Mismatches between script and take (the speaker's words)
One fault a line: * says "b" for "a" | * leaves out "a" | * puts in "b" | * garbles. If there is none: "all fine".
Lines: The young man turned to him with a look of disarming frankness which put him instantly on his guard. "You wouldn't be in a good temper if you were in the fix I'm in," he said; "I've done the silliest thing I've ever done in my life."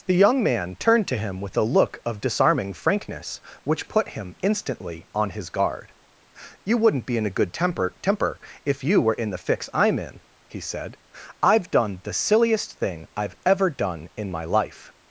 * puts in "temper"